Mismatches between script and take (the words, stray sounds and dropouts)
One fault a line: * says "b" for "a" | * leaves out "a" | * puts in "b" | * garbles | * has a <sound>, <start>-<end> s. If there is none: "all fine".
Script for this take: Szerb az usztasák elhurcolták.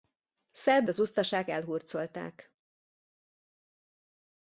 all fine